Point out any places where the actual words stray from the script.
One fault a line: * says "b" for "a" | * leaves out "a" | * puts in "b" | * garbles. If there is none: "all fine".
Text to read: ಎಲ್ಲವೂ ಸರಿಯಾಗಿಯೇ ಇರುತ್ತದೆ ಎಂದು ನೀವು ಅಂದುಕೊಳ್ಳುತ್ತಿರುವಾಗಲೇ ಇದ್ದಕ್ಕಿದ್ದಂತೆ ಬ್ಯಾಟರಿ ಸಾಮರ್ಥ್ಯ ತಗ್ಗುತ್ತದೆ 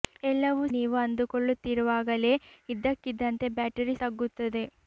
* leaves out "ಸರಿಯಾಗಿಯೇ ಇರುತ್ತದೆ ಎಂದು"
* leaves out "ಸಾಮರ್ಥ್ಯ"